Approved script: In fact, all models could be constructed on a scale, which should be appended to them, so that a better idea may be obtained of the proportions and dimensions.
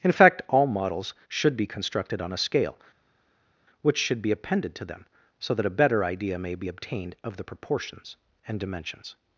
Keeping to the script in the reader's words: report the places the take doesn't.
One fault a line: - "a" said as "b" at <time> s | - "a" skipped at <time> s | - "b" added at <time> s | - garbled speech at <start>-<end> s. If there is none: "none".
- "could" said as "should" at 1.3 s